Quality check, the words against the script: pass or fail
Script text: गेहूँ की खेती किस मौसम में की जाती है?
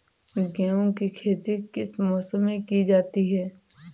pass